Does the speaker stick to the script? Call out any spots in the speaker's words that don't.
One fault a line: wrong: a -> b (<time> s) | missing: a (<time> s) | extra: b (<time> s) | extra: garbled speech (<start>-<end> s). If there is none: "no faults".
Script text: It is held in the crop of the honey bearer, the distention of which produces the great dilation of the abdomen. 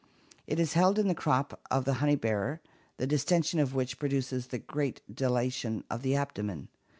no faults